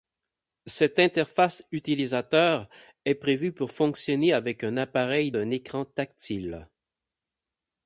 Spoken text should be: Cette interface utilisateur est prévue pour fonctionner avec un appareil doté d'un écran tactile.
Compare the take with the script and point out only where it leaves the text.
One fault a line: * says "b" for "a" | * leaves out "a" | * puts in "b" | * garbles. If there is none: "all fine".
* leaves out "doté"